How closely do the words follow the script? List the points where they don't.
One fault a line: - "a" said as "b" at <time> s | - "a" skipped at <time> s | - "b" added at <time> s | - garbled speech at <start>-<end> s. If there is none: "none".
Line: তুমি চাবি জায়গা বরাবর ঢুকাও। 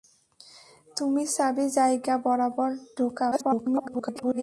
- garbled speech at 3.3-4.4 s